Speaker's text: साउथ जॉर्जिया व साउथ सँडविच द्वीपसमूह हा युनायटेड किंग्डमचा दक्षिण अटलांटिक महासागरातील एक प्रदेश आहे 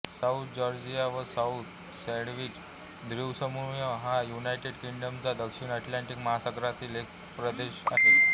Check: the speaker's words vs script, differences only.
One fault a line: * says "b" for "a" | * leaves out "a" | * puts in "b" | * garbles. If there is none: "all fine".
all fine